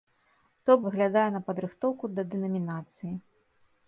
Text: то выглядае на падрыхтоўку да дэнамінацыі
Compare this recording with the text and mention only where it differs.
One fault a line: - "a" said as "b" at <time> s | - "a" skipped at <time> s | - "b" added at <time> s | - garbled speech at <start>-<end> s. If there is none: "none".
none